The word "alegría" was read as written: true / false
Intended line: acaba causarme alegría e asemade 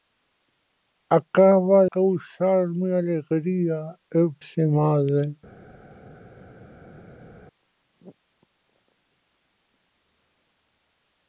true